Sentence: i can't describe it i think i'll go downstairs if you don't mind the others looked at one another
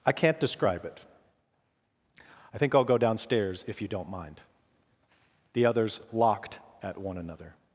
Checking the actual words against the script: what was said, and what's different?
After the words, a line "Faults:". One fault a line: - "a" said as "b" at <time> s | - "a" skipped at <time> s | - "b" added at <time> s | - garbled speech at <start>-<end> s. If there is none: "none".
i can't describe it i think i'll go downstairs if you don't mind the others locked at one another
Faults:
- "looked" said as "locked" at 6.1 s